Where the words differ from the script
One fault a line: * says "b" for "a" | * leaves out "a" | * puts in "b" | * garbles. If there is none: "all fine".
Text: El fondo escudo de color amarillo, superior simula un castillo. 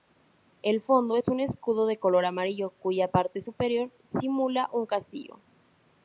* puts in "es un"
* puts in "cuya parte"